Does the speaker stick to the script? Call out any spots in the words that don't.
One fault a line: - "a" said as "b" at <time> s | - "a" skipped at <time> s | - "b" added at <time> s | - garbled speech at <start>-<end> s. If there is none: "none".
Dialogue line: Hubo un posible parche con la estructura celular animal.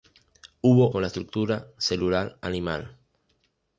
- "un posible parche" skipped at 0.9 s